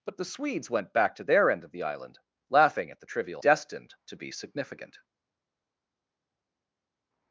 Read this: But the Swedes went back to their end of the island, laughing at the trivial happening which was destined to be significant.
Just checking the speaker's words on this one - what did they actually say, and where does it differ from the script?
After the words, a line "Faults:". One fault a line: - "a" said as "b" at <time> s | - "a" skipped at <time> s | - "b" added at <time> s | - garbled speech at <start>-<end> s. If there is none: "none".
But the Swedes went back to their end of the island, laughing at the trivial destined to be significant.
Faults:
- "happening which was" skipped at 3.4 s